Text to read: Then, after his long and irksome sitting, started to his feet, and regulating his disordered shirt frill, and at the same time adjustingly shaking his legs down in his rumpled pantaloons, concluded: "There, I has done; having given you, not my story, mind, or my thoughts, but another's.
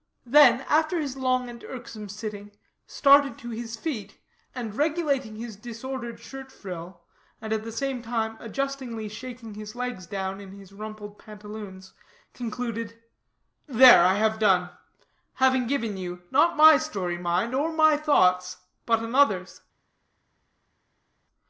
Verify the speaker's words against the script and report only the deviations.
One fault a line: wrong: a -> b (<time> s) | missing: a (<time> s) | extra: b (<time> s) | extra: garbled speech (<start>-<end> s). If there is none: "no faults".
wrong: has -> have (14.1 s)